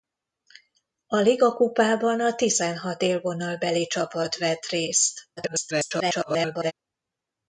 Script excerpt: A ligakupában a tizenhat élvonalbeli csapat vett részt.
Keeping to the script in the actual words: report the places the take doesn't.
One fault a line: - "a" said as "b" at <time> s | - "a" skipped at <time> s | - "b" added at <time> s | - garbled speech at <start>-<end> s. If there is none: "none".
- garbled speech at 5.4-6.7 s